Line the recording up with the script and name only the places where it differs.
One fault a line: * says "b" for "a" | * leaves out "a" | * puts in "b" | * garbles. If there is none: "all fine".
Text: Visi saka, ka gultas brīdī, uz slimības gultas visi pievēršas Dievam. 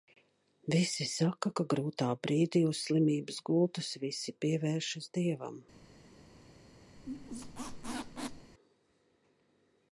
* says "grūtā" for "gultas"